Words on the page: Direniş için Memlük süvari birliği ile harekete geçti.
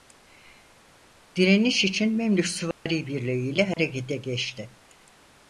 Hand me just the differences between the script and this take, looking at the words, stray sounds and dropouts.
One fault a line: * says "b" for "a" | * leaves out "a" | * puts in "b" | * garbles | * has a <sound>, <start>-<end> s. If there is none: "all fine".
* has a dropout, 2.7-2.9 s
* has a dropout, 3.7-3.8 s